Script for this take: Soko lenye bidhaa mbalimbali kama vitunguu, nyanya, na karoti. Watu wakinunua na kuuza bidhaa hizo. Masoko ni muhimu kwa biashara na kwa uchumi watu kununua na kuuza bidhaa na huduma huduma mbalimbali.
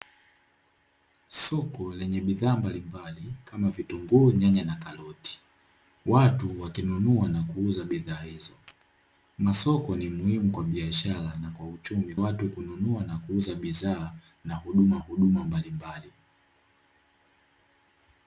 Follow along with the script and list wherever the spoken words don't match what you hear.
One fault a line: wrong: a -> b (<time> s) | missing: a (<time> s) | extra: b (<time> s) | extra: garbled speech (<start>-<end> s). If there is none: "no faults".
no faults